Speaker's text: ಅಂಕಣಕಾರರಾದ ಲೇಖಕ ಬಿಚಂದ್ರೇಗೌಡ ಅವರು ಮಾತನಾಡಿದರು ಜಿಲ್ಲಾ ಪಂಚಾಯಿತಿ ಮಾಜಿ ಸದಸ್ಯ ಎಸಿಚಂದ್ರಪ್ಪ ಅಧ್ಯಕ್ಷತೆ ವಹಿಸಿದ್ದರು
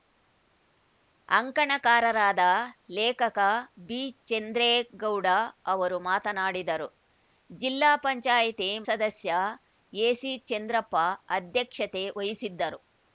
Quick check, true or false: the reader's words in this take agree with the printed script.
false